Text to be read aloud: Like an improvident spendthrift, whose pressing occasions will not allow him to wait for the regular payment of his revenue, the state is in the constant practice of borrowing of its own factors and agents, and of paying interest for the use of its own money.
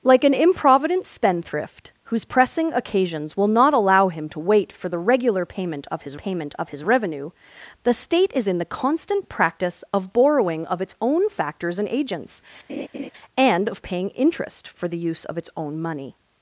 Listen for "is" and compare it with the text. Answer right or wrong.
right